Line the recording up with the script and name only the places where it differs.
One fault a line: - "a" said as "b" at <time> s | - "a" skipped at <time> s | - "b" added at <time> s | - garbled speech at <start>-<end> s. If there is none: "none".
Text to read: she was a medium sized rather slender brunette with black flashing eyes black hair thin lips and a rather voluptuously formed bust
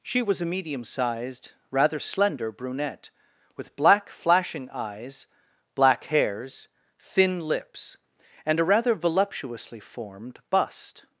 - "hair" said as "hairs" at 6.0 s